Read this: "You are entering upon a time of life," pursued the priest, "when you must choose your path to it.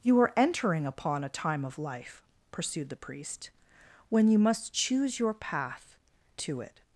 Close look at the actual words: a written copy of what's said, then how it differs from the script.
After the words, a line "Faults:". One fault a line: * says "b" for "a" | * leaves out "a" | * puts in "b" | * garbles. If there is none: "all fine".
"You are entering upon a time of life," pursued the priest, "when you must choose your path to it.
Faults:
all fine